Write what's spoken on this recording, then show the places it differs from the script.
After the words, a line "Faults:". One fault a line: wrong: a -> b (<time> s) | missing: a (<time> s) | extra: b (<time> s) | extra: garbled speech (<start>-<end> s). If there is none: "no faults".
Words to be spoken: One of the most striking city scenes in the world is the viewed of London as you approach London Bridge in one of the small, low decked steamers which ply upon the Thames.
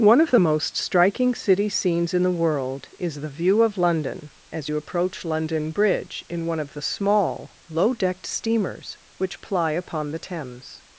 One of the most striking city scenes in the world is the view of London as you approach London Bridge in one of the small, low decked steamers which ply upon the Thames.
Faults:
wrong: viewed -> view (3.4 s)